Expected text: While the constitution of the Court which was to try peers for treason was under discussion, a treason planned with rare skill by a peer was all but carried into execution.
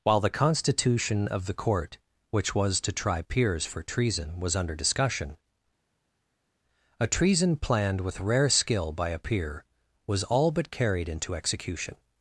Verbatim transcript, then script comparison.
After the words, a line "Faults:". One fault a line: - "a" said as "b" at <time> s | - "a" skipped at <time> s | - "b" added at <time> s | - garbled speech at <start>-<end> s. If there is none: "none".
While the constitution of the Court which was to try peers for treason was under discussion, a treason planned with rare skill by a peer was all but carried into execution.
Faults:
none